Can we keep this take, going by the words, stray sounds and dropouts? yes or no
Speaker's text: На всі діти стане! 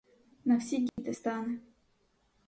no